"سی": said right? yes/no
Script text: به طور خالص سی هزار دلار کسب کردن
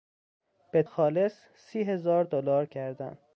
yes